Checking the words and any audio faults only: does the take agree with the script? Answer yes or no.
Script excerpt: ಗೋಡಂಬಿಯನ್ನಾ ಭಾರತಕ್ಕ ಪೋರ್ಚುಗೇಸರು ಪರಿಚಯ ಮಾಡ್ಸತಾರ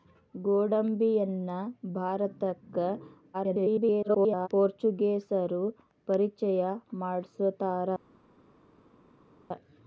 no